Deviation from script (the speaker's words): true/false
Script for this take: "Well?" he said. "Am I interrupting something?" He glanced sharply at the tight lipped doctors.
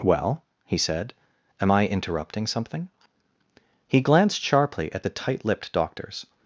false